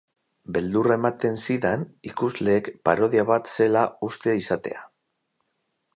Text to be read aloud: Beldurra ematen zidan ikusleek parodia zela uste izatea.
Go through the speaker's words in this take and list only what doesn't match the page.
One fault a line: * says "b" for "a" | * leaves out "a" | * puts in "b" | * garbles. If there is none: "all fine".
* puts in "bat"